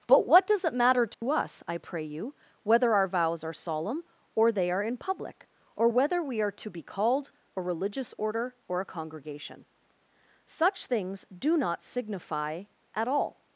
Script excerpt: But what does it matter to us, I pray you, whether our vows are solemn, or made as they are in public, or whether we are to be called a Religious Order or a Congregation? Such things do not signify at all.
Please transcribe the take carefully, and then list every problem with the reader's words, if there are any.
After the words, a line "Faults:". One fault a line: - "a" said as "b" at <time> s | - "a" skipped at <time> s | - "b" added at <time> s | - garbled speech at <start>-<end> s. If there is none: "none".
But what does it matter to us, I pray you, whether our vows are solemn, or they are in public, or whether we are to be called a Religious Order or a Congregation? Such things do not signify at all.
Faults:
- "made as" skipped at 4.5 s